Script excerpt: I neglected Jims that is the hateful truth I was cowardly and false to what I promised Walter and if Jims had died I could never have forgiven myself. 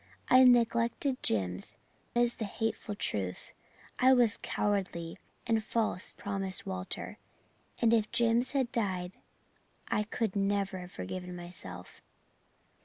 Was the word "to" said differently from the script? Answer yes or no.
yes